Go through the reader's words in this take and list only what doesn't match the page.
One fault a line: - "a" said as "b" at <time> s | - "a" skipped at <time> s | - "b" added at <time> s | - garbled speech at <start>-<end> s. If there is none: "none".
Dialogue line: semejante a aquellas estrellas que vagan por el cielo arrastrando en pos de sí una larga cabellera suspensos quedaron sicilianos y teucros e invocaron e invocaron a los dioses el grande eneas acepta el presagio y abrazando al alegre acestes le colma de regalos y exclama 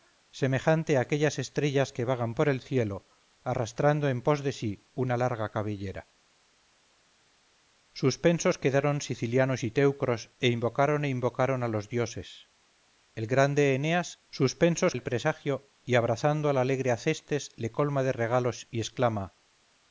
- "acepta" said as "suspensos" at 14.3 s